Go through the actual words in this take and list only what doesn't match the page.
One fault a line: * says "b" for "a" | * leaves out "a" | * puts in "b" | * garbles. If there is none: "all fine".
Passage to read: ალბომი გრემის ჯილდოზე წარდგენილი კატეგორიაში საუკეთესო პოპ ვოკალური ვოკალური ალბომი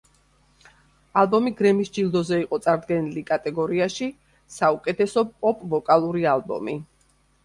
* puts in "იყო"
* leaves out "ვოკალური"